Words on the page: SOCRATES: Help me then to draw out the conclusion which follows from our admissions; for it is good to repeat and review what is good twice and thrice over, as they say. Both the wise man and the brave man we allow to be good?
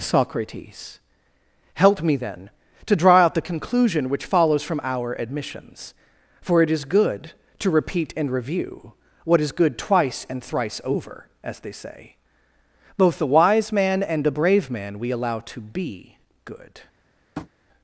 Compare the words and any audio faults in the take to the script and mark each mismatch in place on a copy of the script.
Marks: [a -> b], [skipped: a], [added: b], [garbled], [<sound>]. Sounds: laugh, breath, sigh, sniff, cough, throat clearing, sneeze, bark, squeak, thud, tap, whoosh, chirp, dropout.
SOCRATES: Help me then to draw out the conclusion which follows from our admissions; for it is good to repeat and review what is good twice and thrice over, as they say. Both the wise man and the brave man we allow to be good? [tap]